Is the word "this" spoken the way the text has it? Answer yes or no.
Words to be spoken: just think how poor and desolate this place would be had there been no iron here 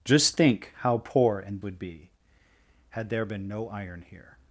no